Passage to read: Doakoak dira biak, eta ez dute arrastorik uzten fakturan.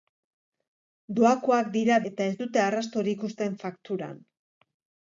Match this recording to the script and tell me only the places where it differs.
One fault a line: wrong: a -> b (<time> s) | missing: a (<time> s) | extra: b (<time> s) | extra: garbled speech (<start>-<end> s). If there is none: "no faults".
missing: biak (2.0 s)